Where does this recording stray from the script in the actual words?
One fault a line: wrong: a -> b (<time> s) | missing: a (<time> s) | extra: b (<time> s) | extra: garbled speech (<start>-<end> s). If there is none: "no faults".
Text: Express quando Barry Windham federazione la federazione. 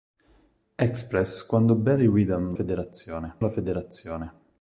no faults